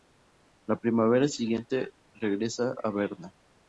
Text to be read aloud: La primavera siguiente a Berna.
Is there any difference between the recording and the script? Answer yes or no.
yes